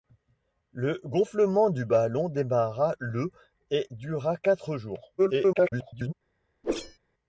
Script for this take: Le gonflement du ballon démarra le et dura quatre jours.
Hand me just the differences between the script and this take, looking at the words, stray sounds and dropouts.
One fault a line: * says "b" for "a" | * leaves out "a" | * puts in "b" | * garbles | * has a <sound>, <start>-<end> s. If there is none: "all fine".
* garbles
* has a whoosh, 6.6-7.0 s